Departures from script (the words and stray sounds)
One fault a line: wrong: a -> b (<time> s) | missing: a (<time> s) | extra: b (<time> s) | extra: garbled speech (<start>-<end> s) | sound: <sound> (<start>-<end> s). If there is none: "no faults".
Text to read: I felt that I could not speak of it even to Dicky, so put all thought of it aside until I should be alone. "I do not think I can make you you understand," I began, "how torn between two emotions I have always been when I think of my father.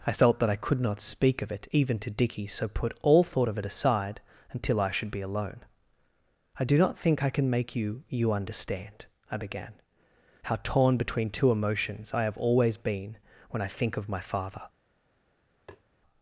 sound: tap (15.7-15.8 s)